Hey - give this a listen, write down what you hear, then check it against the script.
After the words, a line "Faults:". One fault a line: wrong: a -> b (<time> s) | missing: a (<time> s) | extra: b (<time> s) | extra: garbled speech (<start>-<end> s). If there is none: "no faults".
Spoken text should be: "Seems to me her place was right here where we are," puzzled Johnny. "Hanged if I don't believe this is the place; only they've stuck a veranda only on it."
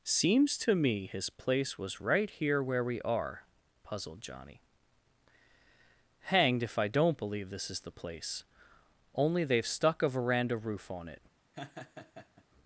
"Seems to me his place was right here where we are," puzzled Johnny. "Hanged if I don't believe this is the place; only they've stuck a veranda roof on it."
Faults:
wrong: her -> his (1.1 s)
wrong: only -> roof (10.6 s)